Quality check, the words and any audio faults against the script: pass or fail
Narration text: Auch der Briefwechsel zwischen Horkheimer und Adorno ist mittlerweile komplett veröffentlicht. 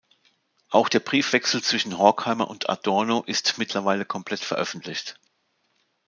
pass